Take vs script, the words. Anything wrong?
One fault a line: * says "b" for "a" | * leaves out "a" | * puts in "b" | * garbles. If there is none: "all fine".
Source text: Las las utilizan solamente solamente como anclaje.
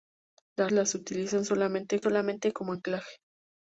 all fine